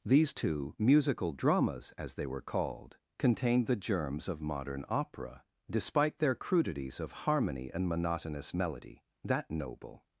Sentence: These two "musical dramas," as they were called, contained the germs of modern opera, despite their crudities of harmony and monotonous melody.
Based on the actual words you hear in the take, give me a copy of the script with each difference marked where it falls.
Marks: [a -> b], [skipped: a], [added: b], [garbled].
These two "musical dramas," as they were called, contained the germs of modern opera, despite their crudities of harmony and monotonous melody. [added: That noble]